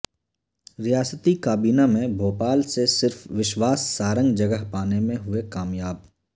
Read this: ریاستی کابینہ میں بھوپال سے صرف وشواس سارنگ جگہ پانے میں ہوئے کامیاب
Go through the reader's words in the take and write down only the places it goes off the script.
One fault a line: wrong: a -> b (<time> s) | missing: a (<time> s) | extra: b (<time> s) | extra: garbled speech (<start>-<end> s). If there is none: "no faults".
no faults